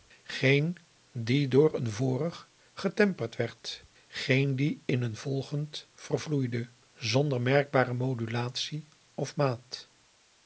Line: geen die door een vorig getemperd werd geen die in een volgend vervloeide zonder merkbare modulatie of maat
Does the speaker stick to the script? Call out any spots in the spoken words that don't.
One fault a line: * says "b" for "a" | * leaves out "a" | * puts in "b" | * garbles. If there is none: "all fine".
all fine